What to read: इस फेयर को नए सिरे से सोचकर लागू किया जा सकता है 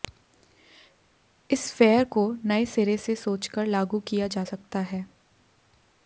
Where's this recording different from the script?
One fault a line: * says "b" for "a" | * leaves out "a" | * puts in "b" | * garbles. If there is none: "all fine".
all fine